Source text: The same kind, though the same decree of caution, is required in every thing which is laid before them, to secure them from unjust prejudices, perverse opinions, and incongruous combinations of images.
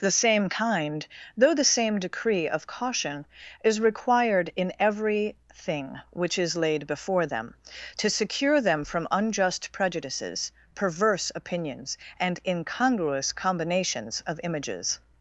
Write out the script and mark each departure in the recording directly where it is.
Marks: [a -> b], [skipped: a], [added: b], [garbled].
The same kind, though the same decree of caution, is required in every thing which is laid before them, to secure them from unjust prejudices, perverse opinions, and incongruous combinations of images.